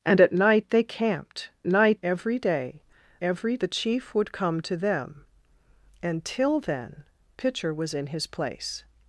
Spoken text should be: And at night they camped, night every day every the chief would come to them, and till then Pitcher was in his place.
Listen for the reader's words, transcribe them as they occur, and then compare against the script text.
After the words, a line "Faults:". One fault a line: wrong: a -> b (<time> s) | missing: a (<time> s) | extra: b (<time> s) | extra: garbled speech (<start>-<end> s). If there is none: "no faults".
And at night they camped, night every day every the chief would come to them, and till then Pitcher was in his place.
Faults:
no faults